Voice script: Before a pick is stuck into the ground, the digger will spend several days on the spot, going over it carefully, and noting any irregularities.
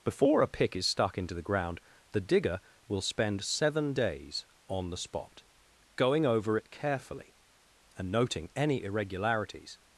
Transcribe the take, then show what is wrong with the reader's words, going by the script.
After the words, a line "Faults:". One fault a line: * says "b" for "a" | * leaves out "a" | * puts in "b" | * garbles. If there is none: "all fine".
Before a pick is stuck into the ground, the digger will spend seven days on the spot, going over it carefully, and noting any irregularities.
Faults:
* says "seven" for "several"